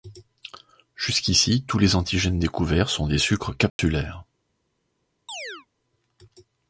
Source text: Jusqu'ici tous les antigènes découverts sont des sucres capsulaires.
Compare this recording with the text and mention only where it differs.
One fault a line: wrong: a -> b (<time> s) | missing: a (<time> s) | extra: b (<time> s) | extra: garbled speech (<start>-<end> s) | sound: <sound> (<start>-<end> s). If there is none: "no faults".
sound: dropout (3.7-3.8 s)
sound: chirp (5.3-5.7 s)